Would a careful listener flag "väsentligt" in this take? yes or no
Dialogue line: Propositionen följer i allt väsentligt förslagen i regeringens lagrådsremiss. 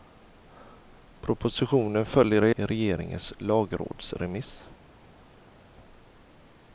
yes